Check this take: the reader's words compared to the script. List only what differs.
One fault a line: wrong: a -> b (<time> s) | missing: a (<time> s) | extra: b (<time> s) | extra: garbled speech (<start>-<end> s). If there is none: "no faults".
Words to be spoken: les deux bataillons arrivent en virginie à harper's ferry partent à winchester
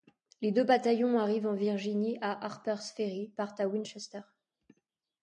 no faults